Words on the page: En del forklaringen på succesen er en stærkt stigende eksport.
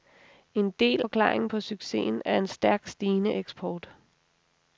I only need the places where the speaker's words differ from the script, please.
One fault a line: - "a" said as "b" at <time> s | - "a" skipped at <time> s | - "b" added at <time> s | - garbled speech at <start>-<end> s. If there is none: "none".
none